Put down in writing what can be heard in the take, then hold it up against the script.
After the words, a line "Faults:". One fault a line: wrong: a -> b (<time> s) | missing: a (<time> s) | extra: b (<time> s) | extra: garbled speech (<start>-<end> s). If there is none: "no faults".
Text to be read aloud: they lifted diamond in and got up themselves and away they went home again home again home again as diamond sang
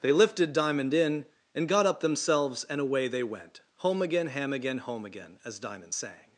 they lifted diamond in and got up themselves and away they went home again ham again home again as diamond sang
Faults:
wrong: home -> ham (4.3 s)